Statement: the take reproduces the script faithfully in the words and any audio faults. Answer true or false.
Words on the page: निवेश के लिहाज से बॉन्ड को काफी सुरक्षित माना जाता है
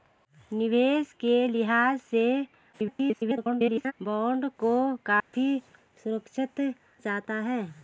false